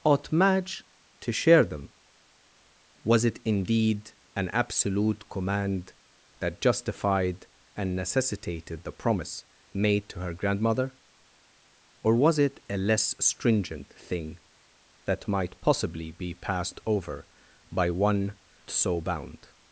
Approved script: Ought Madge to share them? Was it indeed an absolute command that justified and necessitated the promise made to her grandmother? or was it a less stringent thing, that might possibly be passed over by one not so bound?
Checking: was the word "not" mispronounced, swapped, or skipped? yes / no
yes